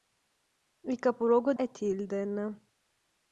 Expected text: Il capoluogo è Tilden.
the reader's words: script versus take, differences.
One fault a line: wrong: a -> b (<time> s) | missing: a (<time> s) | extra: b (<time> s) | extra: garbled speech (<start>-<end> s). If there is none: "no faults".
no faults